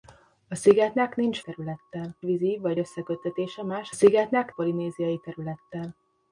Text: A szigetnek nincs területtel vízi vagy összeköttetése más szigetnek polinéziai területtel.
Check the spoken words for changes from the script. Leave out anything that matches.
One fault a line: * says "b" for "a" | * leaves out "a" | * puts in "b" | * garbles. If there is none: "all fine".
all fine